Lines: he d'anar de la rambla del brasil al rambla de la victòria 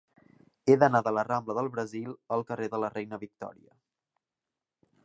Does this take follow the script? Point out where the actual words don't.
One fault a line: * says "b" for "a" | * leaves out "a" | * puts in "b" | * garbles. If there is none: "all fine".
* says "carrer" for "rambla"
* puts in "reina"